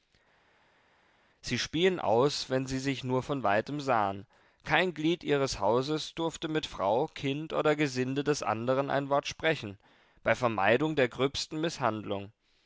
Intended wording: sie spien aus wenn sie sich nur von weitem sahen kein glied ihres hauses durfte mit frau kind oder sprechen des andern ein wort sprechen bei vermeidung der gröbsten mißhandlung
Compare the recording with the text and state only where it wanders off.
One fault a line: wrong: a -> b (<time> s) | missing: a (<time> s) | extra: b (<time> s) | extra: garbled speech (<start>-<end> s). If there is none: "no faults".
wrong: sprechen -> gesinde (7.7 s)